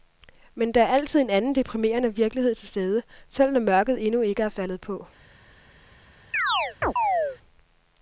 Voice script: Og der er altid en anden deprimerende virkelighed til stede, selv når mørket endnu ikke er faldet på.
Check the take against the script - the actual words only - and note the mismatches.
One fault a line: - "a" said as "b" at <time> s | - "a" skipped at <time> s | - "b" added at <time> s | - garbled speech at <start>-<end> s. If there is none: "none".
- "Og" said as "Men" at 0.6 s